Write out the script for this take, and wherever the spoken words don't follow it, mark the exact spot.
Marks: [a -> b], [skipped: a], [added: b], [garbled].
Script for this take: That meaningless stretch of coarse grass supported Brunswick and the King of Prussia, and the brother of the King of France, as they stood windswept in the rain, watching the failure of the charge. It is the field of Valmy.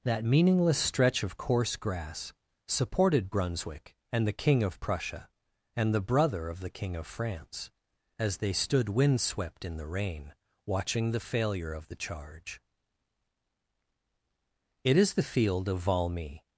That meaningless stretch of coarse grass supported Brunswick and the King of Prussia, and the brother of the King of France, as they stood windswept in the rain, watching the failure of the charge. It is the field of Valmy.